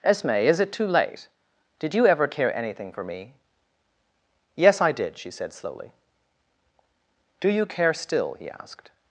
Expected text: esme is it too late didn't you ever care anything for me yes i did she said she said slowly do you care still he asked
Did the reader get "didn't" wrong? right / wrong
wrong